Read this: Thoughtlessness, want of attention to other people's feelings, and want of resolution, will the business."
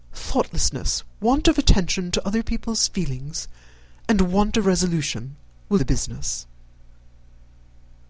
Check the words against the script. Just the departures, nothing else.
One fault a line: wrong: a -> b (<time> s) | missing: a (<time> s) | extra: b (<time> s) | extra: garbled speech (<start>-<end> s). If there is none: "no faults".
no faults